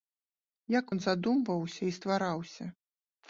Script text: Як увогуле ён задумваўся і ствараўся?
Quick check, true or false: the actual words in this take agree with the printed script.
false